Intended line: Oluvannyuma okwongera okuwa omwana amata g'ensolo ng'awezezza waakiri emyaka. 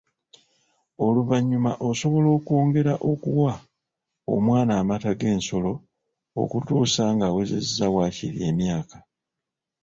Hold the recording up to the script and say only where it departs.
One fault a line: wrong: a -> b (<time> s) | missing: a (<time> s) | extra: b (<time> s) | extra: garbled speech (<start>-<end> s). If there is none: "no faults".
extra: osobola (1.9 s)
extra: okutuusa (6.4 s)